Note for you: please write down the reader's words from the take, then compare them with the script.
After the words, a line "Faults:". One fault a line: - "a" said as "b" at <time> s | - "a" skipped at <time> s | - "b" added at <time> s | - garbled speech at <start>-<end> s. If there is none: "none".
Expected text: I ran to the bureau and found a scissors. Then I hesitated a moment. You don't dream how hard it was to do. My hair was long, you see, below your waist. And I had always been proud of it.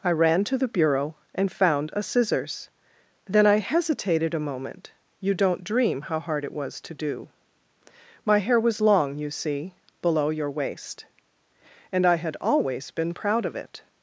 I ran to the bureau and found a scissors. Then I hesitated a moment. You don't dream how hard it was to do. My hair was long, you see, below your waist. And I had always been proud of it.
Faults:
none